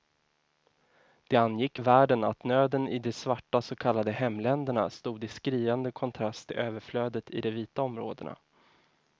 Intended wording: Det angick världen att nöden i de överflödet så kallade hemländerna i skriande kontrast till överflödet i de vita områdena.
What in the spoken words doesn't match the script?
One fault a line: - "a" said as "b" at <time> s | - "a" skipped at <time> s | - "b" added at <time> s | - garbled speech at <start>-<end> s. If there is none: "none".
- "överflödet" said as "svarta" at 3.1 s
- "stod" added at 4.9 s